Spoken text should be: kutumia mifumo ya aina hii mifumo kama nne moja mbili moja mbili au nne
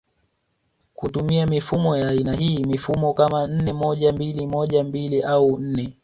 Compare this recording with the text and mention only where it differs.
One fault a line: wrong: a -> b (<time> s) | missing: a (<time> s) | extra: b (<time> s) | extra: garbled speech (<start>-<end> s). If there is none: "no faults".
no faults